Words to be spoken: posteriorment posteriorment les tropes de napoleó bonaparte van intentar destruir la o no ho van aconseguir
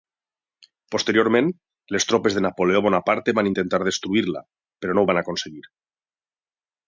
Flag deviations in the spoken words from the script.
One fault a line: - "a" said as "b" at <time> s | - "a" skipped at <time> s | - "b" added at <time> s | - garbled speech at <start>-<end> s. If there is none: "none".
- "posteriorment" skipped at 1.5 s
- "o" said as "però" at 4.8 s